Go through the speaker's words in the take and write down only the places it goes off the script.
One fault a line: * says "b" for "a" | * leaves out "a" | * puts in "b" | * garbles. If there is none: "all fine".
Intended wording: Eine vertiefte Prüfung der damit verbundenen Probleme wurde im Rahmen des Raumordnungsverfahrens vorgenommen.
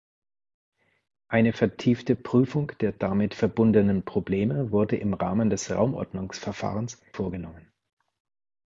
all fine